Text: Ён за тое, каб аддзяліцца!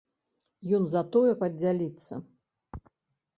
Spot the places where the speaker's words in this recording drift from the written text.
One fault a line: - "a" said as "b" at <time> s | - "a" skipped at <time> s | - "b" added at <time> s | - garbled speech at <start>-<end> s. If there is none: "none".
- "каб" skipped at 1.3 s